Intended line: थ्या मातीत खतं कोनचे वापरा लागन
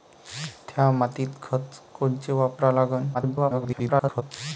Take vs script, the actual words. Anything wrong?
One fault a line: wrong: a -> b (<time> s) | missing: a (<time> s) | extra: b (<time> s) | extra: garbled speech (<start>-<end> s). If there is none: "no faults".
extra: garbled speech (3.1-4.2 s)